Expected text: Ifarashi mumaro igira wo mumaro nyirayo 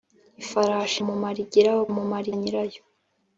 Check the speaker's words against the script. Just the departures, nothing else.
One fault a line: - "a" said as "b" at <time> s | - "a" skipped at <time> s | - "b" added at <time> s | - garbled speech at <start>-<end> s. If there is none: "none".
none